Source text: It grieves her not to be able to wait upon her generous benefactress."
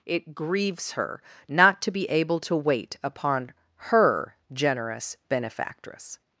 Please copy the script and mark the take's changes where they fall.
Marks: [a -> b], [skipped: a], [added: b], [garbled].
It grieves her not to be able to wait upon her generous benefactress."